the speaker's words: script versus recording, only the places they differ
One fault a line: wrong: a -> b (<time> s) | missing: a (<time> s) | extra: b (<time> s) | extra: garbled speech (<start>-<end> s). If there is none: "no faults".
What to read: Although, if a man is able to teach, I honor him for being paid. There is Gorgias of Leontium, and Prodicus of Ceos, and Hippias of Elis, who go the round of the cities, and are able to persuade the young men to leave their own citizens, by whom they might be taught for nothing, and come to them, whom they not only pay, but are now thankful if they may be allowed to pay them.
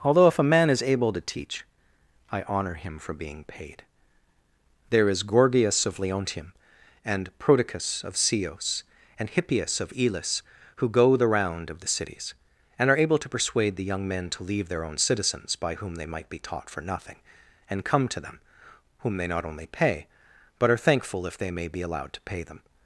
missing: now (20.8 s)